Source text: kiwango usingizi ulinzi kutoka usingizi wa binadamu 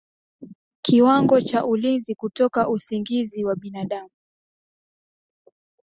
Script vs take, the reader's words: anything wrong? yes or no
yes